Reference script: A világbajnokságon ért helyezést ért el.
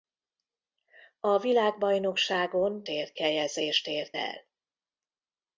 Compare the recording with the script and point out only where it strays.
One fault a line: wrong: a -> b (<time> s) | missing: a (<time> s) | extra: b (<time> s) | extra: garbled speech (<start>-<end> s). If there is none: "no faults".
no faults